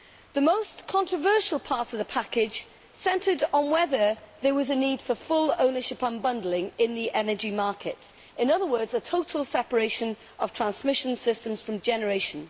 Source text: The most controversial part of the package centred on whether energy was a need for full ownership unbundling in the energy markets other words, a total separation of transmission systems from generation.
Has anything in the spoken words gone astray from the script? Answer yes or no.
yes